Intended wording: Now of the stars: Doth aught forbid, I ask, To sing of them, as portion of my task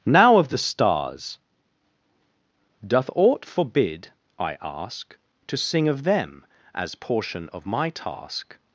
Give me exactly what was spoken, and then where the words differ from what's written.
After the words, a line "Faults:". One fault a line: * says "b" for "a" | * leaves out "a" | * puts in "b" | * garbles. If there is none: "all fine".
Now of the stars: Doth aught forbid, I ask, To sing of them, as portion of my task
Faults:
all fine